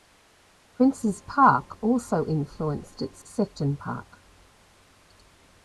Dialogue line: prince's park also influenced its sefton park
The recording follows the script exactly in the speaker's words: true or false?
true